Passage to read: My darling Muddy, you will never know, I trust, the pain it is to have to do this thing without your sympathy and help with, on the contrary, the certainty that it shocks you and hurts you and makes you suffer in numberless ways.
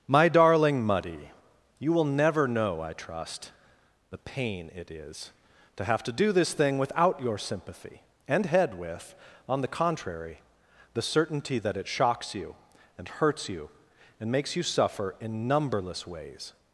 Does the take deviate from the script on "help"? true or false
true